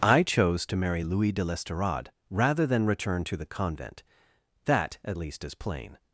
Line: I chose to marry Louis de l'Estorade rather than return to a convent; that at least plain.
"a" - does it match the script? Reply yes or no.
no